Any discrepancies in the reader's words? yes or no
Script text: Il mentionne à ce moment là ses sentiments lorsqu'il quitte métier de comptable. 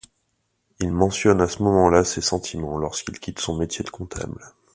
yes